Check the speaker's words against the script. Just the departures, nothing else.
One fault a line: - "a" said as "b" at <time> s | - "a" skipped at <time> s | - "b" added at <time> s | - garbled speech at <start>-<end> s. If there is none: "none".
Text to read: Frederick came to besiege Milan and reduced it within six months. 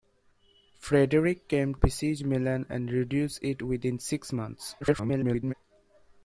- "to" skipped at 1.8 s
- garbled speech at 4.8-5.5 s